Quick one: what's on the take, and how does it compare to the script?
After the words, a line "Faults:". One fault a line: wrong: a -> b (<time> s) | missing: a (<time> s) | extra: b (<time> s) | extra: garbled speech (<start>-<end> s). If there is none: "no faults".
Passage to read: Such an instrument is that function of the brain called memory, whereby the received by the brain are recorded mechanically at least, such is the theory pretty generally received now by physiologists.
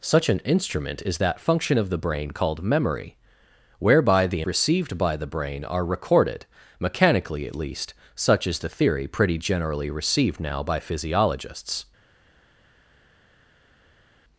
Such an instrument is that function of the brain called memory, whereby the received by the brain are recorded mechanically at least, such is the theory pretty generally received now by physiologists.
Faults:
no faults